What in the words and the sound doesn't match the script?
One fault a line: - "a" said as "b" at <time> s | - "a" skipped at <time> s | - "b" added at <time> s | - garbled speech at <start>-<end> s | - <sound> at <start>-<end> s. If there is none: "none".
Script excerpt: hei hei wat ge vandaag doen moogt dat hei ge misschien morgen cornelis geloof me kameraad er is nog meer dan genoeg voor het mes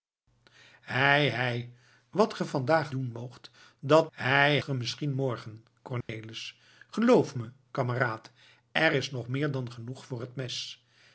- dropout at 6.0-6.1 s